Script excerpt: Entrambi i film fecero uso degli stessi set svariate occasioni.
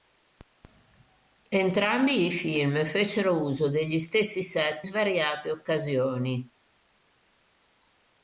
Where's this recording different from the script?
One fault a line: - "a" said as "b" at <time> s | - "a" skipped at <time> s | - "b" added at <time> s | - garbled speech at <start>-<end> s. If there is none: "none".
none